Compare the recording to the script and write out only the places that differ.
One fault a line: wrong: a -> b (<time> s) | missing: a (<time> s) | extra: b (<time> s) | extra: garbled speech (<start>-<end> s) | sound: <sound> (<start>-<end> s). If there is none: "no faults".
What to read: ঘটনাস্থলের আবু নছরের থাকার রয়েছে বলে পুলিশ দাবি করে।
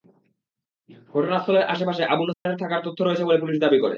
extra: আশপাশে (1.7 s)
sound: dropout (2.3-2.5 s)
extra: তথ্য (2.8 s)